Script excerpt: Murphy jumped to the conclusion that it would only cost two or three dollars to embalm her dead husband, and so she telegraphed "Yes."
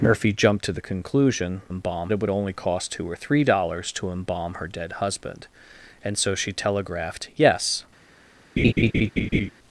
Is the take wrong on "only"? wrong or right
right